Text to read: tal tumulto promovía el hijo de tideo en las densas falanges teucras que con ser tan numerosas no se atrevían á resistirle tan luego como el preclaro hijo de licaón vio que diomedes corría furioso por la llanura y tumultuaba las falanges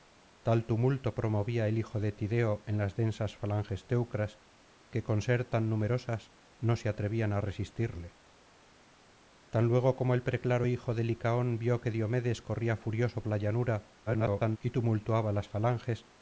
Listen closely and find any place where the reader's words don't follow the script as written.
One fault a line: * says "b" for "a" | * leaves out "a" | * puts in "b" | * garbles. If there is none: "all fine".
* leaves out "por"
* garbles